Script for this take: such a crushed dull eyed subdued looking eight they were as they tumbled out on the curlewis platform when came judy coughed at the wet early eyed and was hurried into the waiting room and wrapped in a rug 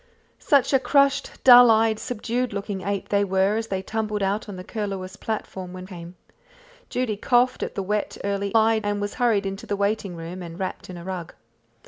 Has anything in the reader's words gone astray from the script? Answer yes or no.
no